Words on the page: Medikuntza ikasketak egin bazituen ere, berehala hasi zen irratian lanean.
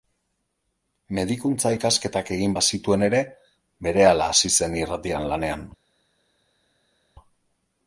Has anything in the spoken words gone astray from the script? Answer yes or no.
no